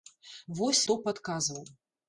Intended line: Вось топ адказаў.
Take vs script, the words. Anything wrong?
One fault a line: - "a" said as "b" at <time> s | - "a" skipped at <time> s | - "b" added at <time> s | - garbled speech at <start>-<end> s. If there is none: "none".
none